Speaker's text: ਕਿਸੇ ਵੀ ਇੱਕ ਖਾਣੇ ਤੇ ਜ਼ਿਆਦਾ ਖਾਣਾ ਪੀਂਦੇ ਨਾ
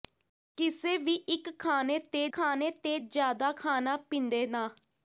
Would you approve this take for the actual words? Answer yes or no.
no